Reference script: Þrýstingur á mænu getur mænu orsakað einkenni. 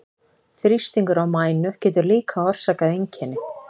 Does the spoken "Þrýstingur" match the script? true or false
true